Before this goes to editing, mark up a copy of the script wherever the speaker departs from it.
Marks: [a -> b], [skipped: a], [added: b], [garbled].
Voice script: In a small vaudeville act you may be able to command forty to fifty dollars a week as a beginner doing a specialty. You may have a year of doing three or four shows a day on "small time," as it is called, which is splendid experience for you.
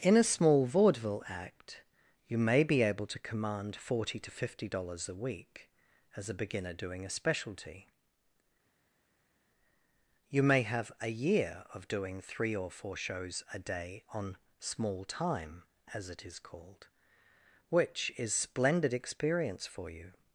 In a small vaudeville act you may be able to command forty to fifty dollars a week as a beginner doing a specialty. You may have a year of doing three or four shows a day on "small time," as it is called, which is splendid experience for you.